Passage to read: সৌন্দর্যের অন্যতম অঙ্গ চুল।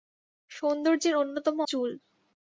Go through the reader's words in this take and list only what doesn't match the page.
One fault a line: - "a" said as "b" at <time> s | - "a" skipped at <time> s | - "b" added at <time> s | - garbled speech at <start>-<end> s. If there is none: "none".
- "অঙ্গ" skipped at 1.6 s